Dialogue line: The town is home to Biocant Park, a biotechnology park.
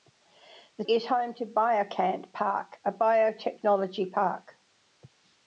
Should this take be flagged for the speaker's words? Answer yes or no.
yes